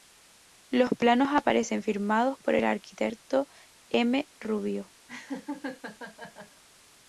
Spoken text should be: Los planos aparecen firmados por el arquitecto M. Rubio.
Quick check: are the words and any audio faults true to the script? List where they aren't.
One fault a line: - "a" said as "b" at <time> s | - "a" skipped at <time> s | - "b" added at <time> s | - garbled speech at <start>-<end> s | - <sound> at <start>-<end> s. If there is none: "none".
- laugh at 5.1-6.6 s